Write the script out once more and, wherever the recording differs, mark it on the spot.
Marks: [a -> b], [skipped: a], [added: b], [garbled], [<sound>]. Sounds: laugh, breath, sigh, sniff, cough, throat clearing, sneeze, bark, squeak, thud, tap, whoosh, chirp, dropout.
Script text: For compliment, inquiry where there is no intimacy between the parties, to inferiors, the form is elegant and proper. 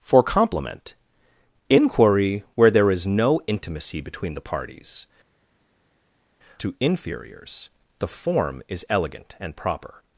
For compliment, inquiry where there is no intimacy between the parties, to inferiors, the form is elegant and proper.